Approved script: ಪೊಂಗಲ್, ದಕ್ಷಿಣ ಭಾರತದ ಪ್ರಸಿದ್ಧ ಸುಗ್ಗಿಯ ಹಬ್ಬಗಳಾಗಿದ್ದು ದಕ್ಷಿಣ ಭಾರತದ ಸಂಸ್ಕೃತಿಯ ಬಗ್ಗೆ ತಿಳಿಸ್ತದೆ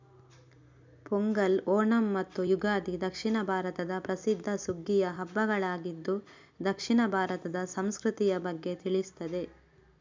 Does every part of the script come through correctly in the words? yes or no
no